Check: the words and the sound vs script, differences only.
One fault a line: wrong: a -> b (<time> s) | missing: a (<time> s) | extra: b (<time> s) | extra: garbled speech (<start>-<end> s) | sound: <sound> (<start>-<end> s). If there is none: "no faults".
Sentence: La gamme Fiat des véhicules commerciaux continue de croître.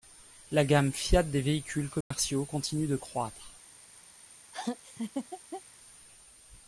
sound: dropout (2.0-2.1 s)
sound: laugh (4.5-5.6 s)